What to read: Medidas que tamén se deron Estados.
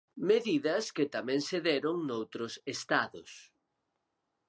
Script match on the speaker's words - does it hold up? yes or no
no